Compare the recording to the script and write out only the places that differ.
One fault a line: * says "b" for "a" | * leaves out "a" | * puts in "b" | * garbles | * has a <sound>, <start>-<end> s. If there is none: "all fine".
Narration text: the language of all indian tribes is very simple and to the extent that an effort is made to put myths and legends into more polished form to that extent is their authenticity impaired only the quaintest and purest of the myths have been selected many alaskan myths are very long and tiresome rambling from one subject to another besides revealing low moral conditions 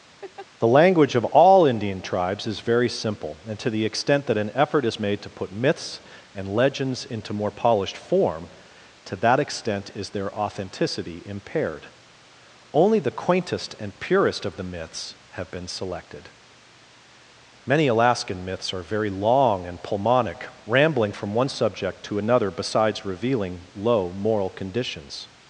* has a laugh, 0.2-0.5 s
* says "pulmonic" for "tiresome"